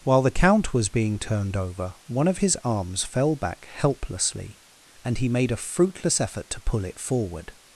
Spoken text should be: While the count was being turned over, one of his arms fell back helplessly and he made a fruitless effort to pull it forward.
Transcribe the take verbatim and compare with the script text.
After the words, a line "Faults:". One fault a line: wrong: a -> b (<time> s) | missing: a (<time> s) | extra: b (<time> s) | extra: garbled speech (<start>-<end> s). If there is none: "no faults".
While the count was being turned over, one of his arms fell back helplessly and he made a fruitless effort to pull it forward.
Faults:
no faults